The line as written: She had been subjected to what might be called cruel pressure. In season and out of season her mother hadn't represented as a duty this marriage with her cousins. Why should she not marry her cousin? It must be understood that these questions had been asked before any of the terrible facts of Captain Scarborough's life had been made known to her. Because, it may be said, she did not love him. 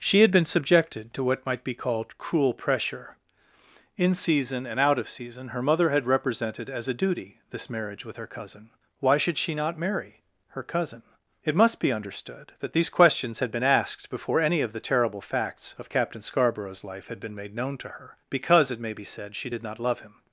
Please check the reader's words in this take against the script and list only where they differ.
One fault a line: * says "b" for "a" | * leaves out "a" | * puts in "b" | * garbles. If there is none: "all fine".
* says "had" for "hadn't"
* says "cousin" for "cousins"